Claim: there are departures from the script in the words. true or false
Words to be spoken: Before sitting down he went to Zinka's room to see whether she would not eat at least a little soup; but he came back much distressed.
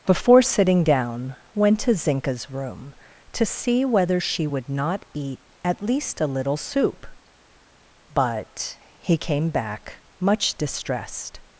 true